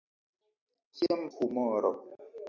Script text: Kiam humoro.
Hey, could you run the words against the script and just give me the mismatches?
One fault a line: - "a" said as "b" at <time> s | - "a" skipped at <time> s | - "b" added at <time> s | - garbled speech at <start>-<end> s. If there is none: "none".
none